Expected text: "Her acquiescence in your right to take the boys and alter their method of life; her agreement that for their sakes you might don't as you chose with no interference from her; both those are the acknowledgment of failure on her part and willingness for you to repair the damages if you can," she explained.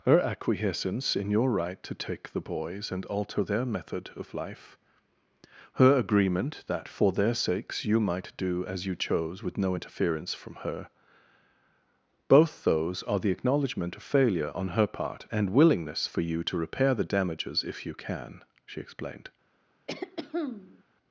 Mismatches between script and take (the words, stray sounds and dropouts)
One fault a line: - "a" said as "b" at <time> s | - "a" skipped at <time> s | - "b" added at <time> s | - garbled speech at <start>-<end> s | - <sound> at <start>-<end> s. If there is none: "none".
- "don't" said as "do" at 8.3 s
- throat clearing at 19.9-20.8 s